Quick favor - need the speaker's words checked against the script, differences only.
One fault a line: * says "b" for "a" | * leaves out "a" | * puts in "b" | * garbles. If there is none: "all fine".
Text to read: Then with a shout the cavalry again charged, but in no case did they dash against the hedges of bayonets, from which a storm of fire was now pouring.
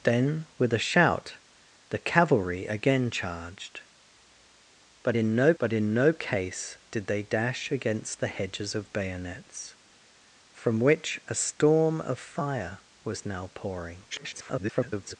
* puts in "but in no"
* garbles